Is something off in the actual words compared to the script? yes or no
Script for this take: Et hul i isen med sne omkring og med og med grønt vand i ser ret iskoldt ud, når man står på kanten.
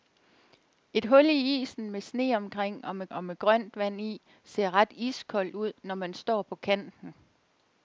no